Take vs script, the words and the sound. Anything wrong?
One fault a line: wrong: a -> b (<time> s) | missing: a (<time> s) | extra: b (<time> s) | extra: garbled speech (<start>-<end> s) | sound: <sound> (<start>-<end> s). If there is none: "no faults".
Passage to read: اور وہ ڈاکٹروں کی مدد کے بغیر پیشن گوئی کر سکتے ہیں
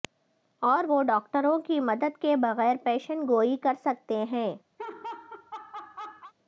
sound: laugh (4.8-6.3 s)